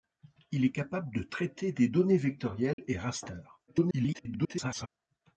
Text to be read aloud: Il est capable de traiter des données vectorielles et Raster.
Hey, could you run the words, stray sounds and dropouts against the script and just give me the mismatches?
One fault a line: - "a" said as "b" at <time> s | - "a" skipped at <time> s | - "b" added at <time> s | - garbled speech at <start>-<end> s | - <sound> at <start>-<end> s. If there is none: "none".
- dropout at 2.7-2.8 s
- garbled speech at 3.7-4.9 s